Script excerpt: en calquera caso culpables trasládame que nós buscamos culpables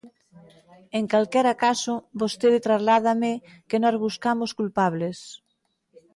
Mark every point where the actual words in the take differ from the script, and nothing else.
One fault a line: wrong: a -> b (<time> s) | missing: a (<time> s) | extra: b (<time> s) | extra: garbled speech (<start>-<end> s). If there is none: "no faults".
wrong: culpables -> vostede (2.2 s)